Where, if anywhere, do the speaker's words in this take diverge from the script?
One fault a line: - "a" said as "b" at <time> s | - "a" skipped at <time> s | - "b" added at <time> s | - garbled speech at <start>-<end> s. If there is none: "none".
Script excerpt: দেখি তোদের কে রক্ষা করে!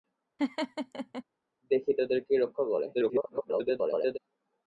- garbled speech at 2.9-4.2 s